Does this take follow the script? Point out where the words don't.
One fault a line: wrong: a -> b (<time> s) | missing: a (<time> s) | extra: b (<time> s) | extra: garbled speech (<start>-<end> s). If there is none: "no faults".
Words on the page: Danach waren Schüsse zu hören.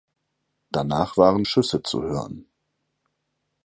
no faults